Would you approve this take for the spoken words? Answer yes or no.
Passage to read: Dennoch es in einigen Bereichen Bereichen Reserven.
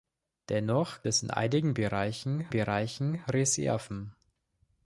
yes